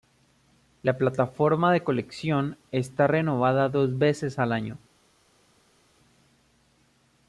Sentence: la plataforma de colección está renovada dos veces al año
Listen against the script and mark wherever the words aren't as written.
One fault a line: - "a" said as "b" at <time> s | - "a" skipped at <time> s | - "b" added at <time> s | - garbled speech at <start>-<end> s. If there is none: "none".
none